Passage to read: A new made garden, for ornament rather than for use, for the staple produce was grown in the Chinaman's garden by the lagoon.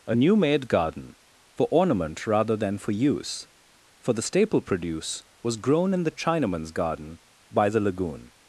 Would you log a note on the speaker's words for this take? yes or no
no